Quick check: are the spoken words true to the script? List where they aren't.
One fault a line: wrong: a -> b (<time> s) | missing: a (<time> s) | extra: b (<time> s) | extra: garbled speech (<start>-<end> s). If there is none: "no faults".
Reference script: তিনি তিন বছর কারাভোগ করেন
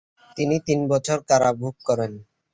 no faults